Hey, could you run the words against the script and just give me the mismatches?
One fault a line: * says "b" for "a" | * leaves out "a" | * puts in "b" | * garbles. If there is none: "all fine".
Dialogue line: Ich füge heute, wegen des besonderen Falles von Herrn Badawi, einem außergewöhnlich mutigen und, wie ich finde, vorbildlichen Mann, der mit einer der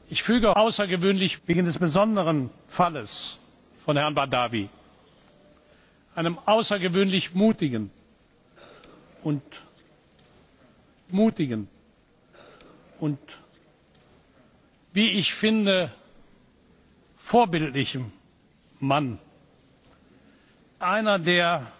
* says "außergewöhnlich" for "heute"
* puts in "mutigen und"
* leaves out "der mit"